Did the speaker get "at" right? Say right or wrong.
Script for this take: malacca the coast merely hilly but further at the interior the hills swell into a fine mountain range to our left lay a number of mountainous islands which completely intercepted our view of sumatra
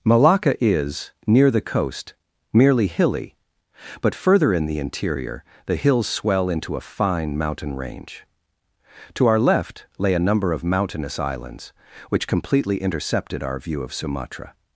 wrong